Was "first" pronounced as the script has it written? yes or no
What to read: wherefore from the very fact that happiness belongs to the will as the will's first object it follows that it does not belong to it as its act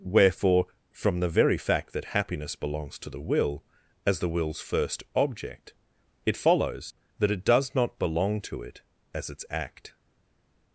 yes